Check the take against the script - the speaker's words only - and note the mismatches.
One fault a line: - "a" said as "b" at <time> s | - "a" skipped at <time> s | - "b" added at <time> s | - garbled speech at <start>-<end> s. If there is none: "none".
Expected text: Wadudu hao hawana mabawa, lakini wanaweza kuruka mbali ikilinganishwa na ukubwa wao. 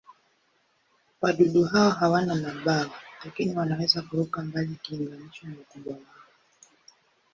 none